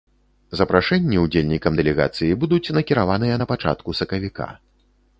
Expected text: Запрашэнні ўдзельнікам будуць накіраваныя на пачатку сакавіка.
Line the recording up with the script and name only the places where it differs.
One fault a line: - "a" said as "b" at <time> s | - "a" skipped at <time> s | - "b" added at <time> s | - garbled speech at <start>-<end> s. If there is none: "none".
- "дэлегацыі" added at 1.8 s